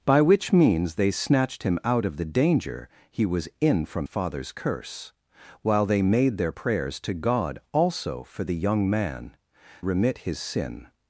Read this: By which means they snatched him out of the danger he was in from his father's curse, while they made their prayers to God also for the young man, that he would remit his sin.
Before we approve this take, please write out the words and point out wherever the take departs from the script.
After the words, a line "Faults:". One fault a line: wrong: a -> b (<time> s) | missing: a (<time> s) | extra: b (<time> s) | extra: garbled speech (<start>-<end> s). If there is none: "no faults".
By which means they snatched him out of the danger he was in from father's curse, while they made their prayers to God also for the young man, remit his sin.
Faults:
missing: his (4.1 s)
missing: that he would (9.4 s)